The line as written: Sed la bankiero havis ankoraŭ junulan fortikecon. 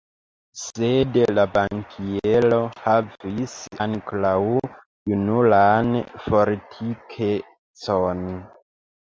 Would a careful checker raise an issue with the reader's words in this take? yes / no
no